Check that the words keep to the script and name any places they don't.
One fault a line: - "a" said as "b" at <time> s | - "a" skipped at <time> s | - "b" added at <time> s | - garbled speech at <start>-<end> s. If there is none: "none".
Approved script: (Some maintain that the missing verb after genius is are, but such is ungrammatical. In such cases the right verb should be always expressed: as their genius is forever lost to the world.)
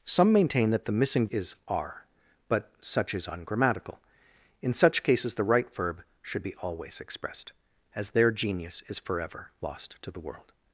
- "verb after genius" skipped at 1.3 s